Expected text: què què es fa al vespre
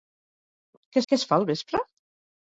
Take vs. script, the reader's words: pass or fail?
pass